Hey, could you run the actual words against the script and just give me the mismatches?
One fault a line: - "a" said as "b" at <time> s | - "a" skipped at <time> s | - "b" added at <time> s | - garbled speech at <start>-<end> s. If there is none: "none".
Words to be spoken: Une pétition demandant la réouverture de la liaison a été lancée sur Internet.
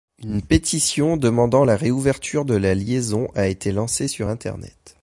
none